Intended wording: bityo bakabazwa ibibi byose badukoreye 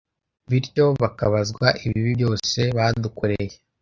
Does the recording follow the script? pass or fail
pass